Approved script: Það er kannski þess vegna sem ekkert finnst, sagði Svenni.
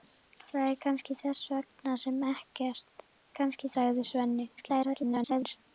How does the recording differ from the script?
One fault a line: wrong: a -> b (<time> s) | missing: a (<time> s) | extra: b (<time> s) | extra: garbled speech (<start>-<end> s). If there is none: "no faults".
wrong: finnst -> kannski (3.4 s)
extra: garbled speech (4.6-5.6 s)